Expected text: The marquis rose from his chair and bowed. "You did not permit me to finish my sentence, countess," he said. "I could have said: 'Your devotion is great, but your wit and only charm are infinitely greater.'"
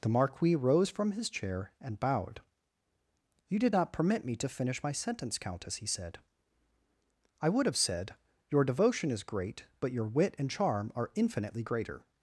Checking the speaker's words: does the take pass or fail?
fail